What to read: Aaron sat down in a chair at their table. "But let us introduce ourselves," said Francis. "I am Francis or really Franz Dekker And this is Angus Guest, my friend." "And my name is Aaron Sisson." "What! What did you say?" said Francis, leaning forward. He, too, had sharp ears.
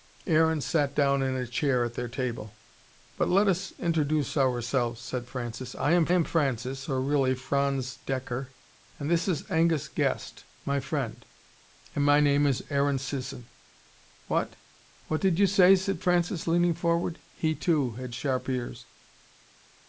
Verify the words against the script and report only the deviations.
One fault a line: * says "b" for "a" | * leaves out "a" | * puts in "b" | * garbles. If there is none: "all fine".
* puts in "am"